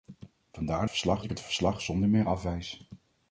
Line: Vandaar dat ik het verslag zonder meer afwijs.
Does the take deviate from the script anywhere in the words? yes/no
yes